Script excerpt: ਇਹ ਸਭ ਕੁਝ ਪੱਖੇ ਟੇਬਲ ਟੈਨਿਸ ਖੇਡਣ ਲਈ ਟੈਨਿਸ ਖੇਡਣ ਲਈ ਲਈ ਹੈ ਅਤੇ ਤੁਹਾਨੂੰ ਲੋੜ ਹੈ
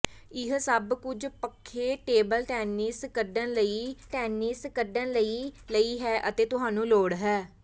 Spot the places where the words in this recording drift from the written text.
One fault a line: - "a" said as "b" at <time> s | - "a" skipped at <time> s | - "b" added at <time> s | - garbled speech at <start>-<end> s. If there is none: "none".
none